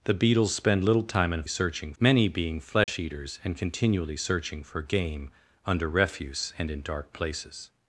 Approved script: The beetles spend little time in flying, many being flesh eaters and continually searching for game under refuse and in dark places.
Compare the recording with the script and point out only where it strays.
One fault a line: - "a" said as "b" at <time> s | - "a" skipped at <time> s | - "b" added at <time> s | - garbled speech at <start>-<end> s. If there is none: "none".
- "flying" said as "searching" at 1.5 s